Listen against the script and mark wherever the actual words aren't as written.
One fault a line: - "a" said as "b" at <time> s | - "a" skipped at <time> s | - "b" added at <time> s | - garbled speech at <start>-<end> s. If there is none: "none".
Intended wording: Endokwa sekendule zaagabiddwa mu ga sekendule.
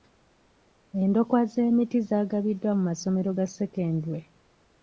- "sekendule" said as "z'emiti" at 1.5 s
- "masomero" added at 2.9 s